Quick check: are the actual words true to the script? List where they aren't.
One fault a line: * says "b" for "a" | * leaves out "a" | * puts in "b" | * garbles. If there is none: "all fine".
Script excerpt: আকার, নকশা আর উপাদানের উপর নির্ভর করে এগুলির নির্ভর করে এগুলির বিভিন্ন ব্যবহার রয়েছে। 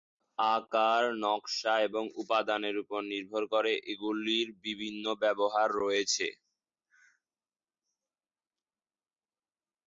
* says "এবং" for "আর"
* leaves out "নির্ভর করে এগুলির"